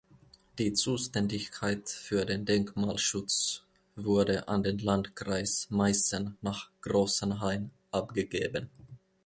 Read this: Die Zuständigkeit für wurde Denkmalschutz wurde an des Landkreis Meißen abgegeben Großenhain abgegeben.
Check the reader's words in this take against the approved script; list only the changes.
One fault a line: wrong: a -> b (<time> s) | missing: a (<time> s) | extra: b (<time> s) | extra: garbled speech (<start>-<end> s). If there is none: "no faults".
wrong: wurde -> den (2.2 s)
wrong: des -> den (4.6 s)
wrong: abgegeben -> nach (6.4 s)